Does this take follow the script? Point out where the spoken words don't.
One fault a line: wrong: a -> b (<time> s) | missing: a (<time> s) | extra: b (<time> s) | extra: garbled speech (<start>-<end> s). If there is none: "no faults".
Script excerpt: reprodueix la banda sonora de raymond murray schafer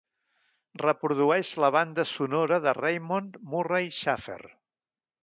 no faults